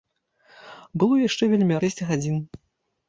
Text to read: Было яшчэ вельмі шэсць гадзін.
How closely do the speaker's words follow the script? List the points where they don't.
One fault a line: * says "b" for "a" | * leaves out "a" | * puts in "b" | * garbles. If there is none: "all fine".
all fine